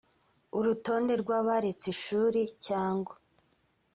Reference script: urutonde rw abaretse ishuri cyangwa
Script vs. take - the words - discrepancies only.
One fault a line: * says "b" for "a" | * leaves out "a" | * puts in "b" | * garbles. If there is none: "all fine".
all fine